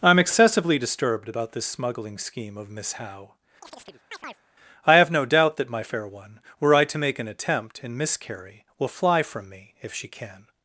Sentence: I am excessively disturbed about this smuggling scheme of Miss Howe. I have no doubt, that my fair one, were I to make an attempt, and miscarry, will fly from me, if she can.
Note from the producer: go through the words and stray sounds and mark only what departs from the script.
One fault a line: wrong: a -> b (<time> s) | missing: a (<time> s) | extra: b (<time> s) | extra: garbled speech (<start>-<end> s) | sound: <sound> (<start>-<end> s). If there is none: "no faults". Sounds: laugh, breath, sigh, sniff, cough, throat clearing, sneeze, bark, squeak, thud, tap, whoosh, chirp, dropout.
sound: chirp (3.6-4.4 s)